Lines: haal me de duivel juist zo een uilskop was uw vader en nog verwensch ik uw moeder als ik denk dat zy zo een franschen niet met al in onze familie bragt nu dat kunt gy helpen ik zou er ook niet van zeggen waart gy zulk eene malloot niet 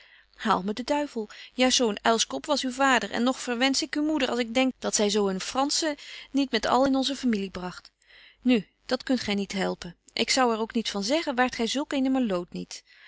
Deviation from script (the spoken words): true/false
true